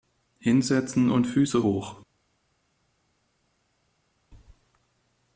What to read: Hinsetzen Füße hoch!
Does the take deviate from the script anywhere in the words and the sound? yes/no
yes